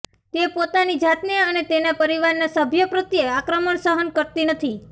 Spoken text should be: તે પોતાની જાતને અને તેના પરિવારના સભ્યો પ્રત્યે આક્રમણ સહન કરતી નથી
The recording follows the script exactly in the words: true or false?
true